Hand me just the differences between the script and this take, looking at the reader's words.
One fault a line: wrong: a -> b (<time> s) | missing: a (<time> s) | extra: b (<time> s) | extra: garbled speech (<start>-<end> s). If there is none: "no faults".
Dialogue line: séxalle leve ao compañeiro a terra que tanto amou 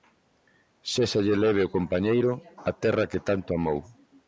no faults